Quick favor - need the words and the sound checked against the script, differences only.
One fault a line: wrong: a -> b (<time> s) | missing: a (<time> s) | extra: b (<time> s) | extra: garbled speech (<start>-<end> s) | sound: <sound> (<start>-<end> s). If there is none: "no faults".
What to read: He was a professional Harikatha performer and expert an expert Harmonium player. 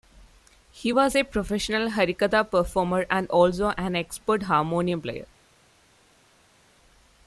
wrong: expert -> also (3.3 s)